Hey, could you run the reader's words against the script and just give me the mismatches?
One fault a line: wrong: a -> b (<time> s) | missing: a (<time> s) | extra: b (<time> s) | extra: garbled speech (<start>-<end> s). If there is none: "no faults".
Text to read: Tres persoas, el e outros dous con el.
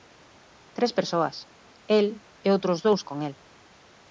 no faults